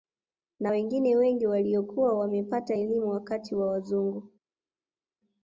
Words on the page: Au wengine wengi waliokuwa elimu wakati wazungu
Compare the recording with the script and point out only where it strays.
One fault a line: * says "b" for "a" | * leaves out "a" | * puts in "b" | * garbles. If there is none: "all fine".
* says "Na" for "Au"
* puts in "wamepata"
* puts in "wa"